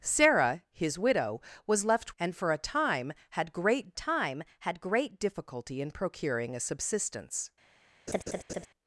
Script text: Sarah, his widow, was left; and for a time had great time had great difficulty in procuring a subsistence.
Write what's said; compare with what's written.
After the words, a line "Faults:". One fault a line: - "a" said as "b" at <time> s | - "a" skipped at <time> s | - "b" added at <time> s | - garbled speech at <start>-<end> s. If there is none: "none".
Sarah, his widow, was left; and for a time had great time had great difficulty in procuring a subsistence.
Faults:
none